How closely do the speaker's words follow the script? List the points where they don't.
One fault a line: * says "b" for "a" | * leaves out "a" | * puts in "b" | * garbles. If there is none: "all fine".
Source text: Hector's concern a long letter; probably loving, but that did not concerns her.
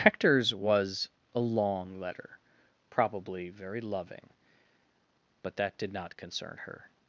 * says "was" for "concern"
* puts in "very"
* says "concern" for "concerns"